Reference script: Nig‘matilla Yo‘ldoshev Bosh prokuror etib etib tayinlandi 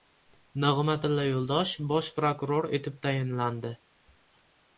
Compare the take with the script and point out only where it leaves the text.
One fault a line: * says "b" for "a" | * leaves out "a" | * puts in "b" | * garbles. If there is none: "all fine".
* leaves out "etib"